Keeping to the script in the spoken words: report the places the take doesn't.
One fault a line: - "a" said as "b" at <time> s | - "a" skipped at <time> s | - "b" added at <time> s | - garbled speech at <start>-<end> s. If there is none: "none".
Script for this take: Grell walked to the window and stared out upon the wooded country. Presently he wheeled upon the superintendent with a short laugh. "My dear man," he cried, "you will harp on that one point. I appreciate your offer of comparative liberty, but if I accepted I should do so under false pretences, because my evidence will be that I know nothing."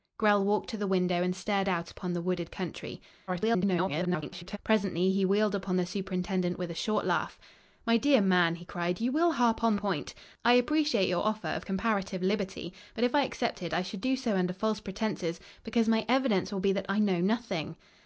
- garbled speech at 3.3-4.6 s
- "that one" skipped at 9.8 s